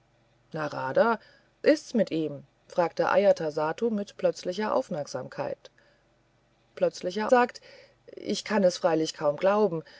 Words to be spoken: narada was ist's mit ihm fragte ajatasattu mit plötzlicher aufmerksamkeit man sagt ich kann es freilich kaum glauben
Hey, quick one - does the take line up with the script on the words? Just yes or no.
no